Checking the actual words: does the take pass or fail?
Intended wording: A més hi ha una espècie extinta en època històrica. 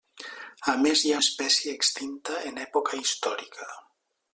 fail